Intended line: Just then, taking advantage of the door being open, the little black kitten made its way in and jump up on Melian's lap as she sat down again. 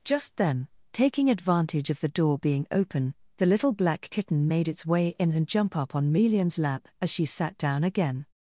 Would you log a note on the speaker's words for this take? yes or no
no